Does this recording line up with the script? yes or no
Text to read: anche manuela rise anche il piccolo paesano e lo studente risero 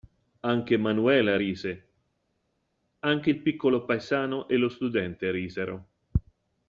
yes